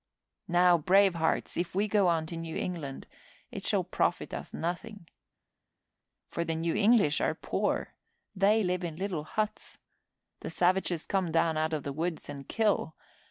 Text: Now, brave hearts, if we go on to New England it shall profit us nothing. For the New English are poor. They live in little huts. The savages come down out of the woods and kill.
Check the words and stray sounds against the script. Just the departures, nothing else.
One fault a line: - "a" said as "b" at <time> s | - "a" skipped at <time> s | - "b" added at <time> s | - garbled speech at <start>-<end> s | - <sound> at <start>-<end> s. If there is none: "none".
none